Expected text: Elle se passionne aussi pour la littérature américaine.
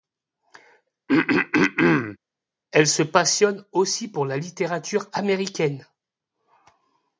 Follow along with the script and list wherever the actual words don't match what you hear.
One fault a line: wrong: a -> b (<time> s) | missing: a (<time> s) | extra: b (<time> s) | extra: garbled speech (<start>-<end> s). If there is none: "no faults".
no faults